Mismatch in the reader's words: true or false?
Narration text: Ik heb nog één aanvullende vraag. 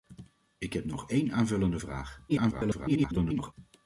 true